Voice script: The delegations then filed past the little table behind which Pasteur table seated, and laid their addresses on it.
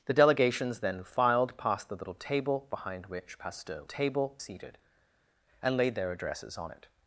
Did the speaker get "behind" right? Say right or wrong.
right